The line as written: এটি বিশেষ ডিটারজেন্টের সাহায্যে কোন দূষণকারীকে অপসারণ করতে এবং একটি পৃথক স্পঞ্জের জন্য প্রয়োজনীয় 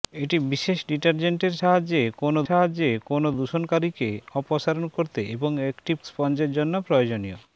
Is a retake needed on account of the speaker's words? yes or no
yes